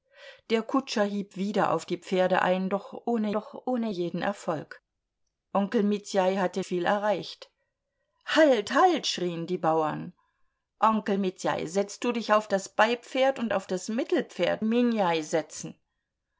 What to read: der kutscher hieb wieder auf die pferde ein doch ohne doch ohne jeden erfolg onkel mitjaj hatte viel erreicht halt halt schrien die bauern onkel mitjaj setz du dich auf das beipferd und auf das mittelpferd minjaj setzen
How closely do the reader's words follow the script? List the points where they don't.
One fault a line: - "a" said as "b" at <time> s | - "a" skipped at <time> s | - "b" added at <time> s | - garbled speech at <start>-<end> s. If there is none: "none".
none